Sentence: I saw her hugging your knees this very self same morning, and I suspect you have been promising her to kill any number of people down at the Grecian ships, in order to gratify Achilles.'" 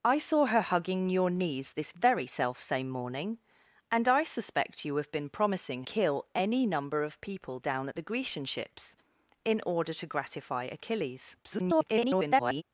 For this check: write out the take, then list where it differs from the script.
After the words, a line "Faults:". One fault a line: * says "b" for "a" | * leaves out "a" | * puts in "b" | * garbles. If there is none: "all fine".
I saw her hugging your knees this very self same morning, and I suspect you have been promising kill any number of people down at the Grecian ships, in order to gratify Achilles.'" [garbled]
Faults:
* leaves out "her to"
* garbles